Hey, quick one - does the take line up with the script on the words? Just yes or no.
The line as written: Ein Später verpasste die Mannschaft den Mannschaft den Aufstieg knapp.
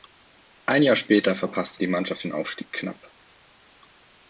no